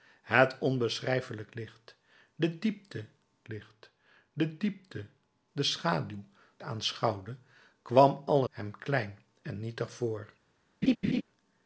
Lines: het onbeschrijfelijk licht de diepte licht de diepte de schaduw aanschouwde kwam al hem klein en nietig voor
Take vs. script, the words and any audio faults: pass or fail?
fail